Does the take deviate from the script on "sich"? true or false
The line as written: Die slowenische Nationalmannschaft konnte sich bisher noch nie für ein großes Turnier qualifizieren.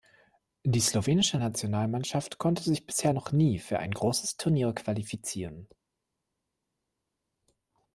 false